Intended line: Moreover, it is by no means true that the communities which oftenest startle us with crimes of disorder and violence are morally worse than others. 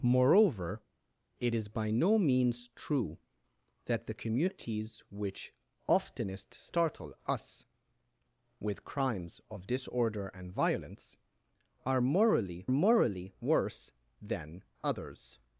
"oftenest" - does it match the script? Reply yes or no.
yes